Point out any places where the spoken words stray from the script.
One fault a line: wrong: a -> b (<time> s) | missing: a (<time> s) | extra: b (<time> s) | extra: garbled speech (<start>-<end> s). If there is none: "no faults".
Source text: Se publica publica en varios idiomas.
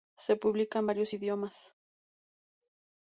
missing: publica (0.8 s)